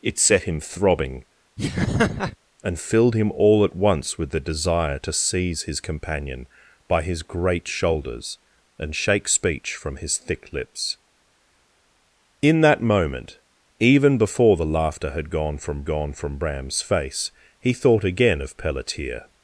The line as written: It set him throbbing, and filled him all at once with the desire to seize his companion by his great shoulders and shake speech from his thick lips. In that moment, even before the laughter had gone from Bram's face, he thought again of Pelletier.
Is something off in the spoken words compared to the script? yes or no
yes